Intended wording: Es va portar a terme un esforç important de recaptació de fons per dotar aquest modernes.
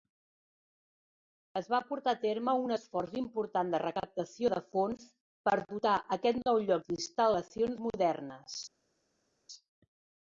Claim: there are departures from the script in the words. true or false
true